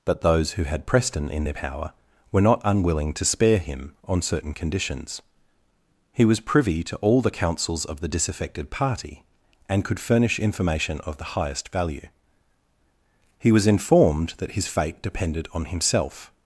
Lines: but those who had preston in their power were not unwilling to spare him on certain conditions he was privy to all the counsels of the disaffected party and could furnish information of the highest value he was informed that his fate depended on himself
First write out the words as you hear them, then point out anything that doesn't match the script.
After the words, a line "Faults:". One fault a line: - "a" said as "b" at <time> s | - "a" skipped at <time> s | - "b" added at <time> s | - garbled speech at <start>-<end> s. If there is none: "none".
but those who had preston in their power were not unwilling to spare him on certain conditions he was privy to all the counsels of the disaffected party and could furnish information of the highest value he was informed that his fate depended on himself
Faults:
none